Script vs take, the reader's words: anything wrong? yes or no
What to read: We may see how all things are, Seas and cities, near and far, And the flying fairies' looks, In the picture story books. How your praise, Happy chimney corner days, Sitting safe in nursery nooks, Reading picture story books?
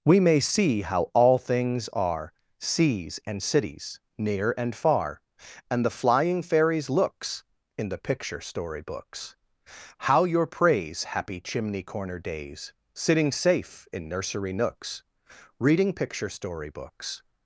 no